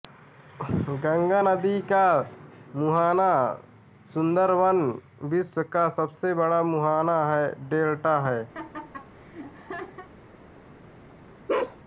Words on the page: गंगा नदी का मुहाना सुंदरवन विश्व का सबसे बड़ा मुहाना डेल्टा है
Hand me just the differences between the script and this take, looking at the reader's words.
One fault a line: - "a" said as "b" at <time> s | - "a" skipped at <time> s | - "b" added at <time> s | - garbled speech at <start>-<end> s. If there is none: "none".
none